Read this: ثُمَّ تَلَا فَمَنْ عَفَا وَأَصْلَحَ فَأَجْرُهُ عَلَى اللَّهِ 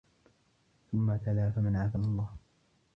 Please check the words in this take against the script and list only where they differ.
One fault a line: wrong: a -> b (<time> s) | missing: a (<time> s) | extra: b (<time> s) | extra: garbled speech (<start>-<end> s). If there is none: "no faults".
missing: وَأَصْلَحَ فَأَجْرُهُ (2.0 s)